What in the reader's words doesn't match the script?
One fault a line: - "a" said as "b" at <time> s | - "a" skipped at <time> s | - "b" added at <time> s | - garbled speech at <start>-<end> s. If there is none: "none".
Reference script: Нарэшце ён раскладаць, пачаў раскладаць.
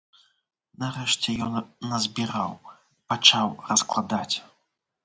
- "раскладаць" said as "назбіраў" at 1.9 s